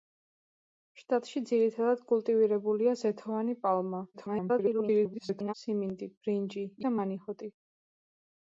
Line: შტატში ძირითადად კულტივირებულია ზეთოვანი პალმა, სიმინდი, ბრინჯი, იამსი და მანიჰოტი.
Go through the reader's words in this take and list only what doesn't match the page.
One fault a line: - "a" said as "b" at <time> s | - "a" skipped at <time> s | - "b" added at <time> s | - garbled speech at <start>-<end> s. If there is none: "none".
- garbled speech at 4.1-5.5 s
- "იამსი" skipped at 6.7 s